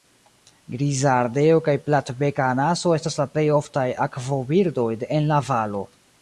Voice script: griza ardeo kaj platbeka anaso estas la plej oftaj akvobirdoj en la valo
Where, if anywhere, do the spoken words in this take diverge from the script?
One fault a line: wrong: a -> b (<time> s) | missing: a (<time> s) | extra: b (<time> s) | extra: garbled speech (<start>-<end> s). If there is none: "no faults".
no faults